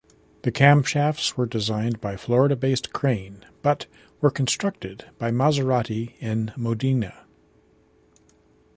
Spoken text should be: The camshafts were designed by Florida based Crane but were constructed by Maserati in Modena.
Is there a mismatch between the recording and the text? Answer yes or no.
no